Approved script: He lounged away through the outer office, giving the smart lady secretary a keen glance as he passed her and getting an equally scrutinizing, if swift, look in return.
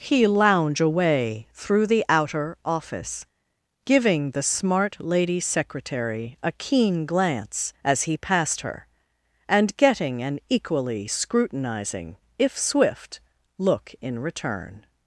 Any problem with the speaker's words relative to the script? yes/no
yes